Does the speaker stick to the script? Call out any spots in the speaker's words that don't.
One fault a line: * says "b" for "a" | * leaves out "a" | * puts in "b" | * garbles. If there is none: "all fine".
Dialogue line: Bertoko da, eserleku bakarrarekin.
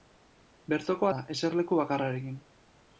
all fine